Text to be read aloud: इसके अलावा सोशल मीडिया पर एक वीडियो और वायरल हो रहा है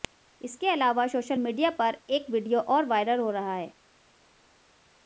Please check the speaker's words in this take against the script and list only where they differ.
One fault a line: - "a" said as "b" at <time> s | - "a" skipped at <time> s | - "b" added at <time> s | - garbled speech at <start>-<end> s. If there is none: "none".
none